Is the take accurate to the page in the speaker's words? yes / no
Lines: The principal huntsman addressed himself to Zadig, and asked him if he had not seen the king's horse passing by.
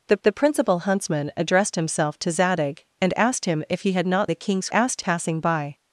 no